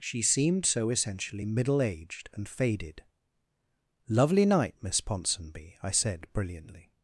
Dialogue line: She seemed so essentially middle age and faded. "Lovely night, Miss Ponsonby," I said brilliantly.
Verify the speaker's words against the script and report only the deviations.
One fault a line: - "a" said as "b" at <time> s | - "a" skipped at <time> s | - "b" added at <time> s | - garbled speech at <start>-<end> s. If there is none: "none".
- "age" said as "aged" at 1.8 s